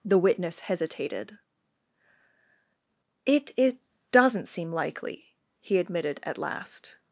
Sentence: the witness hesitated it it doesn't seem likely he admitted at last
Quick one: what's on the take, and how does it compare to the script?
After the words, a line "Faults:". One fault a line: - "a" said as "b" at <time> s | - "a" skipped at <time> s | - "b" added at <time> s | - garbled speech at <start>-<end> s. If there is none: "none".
the witness hesitated it it doesn't seem likely he admitted at last
Faults:
none